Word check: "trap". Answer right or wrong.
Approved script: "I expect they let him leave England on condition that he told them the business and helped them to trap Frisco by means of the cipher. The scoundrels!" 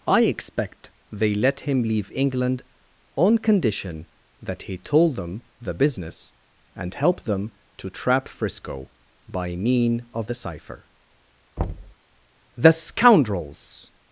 right